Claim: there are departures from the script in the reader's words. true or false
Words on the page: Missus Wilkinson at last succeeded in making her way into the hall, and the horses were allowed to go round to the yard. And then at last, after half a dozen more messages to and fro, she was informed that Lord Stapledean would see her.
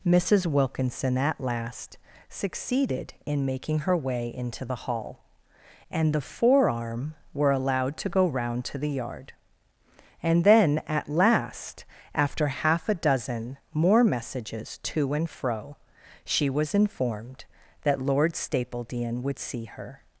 true